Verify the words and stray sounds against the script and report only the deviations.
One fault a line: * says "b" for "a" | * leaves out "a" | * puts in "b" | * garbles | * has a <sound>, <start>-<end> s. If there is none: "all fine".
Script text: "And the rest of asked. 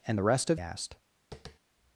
* has a tap, 1.3-1.6 s